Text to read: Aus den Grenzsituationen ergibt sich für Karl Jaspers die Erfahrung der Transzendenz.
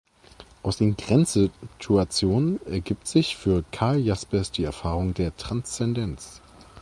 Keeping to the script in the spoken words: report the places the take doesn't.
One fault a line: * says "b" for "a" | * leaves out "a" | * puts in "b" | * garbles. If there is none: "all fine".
all fine